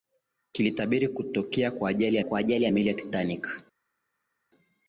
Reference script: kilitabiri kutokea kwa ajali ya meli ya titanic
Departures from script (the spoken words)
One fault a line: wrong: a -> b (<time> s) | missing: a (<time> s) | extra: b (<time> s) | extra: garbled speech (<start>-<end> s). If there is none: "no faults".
extra: kwa ajali ya (2.2 s)